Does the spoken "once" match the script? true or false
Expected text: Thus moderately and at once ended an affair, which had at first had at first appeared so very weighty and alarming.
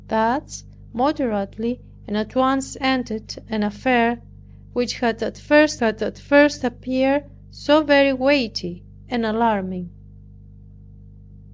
true